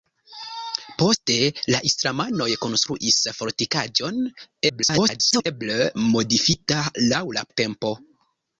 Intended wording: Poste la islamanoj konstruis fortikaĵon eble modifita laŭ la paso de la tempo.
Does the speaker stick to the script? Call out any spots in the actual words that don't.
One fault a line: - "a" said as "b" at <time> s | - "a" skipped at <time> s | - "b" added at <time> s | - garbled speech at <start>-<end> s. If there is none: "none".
- garbled speech at 4.7-5.5 s
- "paso de" skipped at 7.5 s